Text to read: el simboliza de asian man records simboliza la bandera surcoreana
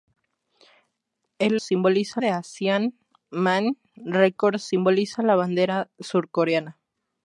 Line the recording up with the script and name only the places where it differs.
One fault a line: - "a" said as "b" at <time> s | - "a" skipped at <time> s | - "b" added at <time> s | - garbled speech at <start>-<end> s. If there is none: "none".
none